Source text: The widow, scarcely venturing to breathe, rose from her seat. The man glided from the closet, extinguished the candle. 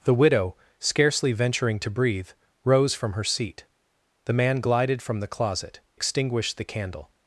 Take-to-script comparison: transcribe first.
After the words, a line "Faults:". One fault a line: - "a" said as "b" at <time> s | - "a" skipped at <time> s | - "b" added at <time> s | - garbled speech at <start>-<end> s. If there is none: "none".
The widow, scarcely venturing to breathe, rose from her seat. The man glided from the closet, extinguished the candle.
Faults:
none